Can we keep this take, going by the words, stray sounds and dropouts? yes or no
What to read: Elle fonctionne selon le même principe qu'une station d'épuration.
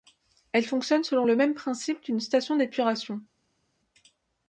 yes